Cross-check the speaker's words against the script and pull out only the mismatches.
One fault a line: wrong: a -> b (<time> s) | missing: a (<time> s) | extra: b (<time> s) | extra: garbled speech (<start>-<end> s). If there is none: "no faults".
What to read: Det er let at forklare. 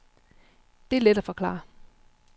no faults